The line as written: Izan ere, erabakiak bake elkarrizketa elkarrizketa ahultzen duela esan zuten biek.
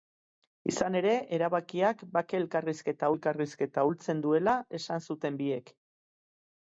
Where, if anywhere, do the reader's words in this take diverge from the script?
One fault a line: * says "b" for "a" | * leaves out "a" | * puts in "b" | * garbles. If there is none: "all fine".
all fine